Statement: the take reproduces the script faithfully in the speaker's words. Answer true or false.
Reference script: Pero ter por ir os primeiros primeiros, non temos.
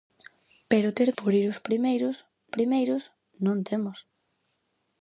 true